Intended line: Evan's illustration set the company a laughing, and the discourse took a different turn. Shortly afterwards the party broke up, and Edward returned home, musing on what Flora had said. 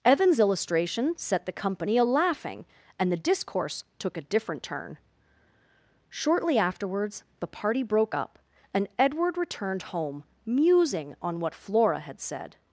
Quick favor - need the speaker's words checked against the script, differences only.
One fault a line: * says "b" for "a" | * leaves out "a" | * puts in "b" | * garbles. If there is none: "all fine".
all fine